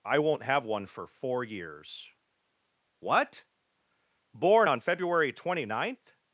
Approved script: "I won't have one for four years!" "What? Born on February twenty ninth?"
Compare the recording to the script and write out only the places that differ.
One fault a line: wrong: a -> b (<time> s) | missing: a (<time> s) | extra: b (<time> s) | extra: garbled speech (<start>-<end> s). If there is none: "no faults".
no faults